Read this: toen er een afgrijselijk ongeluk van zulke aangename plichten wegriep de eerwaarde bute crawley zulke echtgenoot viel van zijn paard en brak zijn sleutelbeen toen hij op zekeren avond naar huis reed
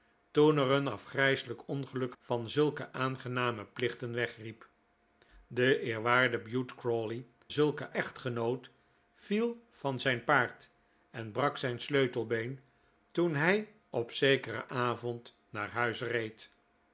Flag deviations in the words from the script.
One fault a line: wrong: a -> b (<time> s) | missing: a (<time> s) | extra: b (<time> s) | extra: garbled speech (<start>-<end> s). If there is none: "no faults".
no faults